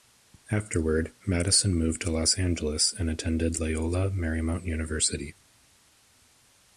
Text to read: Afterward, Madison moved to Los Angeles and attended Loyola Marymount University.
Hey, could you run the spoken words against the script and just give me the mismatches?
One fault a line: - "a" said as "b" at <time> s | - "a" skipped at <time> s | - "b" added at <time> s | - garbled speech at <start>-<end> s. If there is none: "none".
none